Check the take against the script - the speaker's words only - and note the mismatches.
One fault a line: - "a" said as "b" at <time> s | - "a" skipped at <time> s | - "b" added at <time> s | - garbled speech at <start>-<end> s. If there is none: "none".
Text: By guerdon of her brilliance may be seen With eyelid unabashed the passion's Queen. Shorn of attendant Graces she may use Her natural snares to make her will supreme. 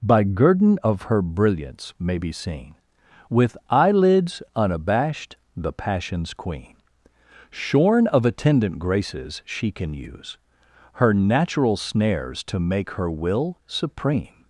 - "eyelid" said as "eyelids" at 3.7 s
- "may" said as "can" at 9.7 s